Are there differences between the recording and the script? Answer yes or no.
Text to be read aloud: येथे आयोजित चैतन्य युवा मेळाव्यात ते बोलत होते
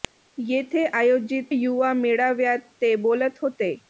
yes